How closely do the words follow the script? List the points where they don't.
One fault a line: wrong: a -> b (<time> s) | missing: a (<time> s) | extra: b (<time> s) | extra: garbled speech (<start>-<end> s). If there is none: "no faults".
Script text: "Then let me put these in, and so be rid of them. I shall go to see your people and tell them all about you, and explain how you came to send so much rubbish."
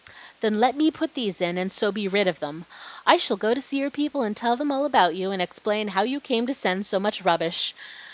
no faults